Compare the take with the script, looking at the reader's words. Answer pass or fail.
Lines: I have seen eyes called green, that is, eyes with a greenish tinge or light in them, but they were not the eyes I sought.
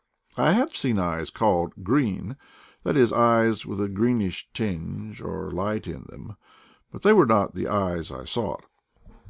pass